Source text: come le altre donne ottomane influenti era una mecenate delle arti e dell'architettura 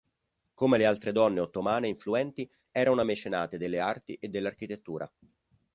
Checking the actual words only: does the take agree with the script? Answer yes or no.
yes